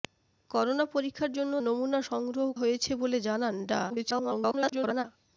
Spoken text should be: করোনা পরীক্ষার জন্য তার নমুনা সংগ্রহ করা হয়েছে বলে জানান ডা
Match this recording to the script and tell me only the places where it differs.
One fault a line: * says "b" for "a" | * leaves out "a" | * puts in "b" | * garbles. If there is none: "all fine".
* leaves out "তার"
* leaves out "করা"
* garbles